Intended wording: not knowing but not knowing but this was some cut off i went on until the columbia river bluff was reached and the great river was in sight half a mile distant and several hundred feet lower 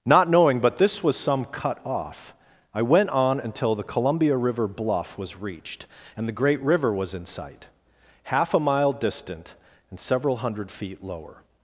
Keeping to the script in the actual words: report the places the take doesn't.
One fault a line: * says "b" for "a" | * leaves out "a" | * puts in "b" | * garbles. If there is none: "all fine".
* leaves out "not knowing but"